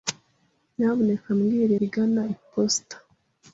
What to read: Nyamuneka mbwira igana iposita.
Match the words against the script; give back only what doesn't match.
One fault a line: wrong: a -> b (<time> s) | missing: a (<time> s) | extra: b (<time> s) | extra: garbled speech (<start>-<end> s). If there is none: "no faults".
no faults